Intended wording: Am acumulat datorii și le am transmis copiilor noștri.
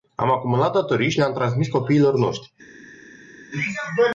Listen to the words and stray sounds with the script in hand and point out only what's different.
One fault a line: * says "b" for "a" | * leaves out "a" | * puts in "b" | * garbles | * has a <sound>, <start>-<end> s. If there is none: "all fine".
all fine